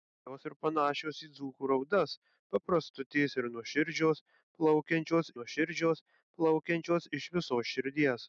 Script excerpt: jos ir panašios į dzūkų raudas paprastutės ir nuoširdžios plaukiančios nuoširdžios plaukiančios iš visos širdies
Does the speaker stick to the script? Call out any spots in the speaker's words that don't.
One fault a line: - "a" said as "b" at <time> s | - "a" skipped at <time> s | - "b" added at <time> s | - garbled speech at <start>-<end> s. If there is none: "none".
none